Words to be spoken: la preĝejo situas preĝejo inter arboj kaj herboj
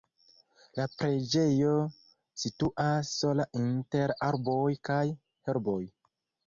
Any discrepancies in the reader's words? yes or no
yes